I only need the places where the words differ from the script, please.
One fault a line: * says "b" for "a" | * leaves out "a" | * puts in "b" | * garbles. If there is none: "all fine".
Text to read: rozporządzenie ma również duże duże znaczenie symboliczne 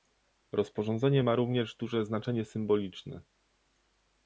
* leaves out "duże"